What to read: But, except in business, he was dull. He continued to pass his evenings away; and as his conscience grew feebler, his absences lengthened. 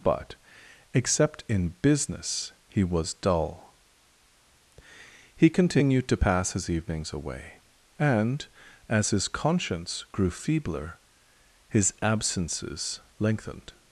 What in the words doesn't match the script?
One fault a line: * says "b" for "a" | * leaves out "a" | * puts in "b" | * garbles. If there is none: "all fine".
all fine